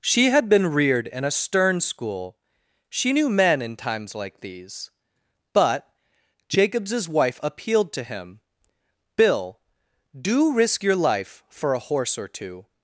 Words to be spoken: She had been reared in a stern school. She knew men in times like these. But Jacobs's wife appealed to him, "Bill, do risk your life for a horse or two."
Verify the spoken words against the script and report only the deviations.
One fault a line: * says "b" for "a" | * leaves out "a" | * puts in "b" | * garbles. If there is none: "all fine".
all fine